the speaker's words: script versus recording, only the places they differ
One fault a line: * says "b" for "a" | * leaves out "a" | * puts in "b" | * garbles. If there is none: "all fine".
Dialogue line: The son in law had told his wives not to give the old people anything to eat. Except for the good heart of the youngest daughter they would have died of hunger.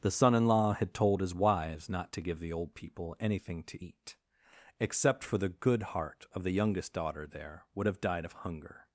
* says "there" for "they"